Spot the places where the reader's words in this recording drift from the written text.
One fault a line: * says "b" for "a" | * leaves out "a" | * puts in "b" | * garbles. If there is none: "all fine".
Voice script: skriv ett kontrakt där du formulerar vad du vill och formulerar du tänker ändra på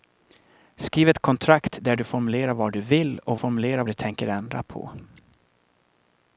all fine